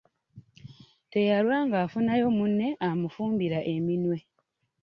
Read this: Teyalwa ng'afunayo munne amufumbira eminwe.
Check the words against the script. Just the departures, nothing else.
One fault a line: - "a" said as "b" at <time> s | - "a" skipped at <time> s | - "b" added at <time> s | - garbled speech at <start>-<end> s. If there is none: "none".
none